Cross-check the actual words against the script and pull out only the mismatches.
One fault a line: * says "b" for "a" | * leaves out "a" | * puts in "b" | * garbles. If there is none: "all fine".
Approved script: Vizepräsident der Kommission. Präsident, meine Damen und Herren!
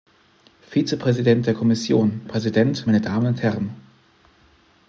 all fine